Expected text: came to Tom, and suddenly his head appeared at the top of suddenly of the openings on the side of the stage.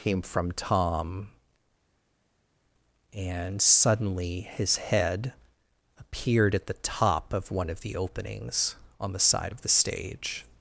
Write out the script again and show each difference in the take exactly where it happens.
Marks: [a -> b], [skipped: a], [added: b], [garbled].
came [to -> from] Tom, and suddenly his head appeared at the top of [suddenly -> one] of the openings on the side of the stage.